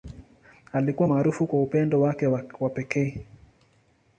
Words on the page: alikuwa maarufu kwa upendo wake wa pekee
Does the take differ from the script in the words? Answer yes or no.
no